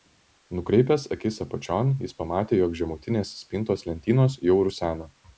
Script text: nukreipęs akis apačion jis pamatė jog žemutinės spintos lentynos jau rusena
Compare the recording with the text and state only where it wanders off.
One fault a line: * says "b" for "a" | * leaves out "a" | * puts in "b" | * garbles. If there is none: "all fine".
all fine